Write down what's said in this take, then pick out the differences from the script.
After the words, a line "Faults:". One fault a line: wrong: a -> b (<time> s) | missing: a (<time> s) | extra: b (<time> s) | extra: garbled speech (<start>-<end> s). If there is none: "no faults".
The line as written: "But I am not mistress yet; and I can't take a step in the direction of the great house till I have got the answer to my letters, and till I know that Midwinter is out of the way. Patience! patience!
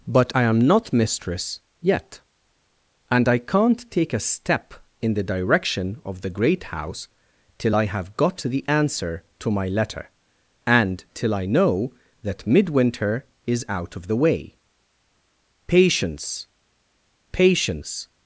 "But I am not mistress yet; and I can't take a step in the direction of the great house till I have got the answer to my letter, and till I know that Midwinter is out of the way. Patience! patience!
Faults:
wrong: letters -> letter (9.7 s)